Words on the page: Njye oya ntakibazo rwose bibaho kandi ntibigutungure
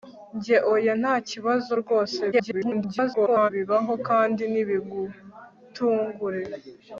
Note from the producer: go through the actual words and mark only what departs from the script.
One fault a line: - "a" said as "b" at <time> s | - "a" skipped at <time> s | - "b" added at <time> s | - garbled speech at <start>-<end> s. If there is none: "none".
- garbled speech at 2.3-3.5 s